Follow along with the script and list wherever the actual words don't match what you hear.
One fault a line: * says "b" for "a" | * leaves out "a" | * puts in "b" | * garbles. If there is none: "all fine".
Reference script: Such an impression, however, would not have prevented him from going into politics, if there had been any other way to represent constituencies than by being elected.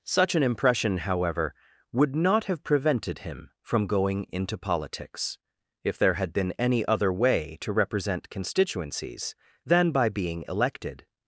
all fine